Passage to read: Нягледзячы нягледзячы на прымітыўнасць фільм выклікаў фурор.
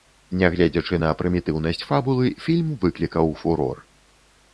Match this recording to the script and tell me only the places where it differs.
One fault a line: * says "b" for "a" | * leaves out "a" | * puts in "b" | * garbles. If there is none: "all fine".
* leaves out "нягледзячы"
* puts in "фабулы"